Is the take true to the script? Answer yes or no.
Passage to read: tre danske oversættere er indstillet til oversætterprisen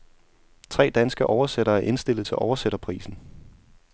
yes